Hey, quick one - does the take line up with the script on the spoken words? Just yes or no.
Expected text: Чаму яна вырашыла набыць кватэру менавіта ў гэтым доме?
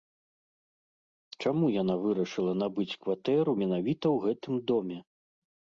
yes